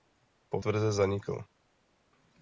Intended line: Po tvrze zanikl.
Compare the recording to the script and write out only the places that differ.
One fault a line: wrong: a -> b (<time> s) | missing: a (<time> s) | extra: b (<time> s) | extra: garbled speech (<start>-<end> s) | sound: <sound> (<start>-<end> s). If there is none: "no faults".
no faults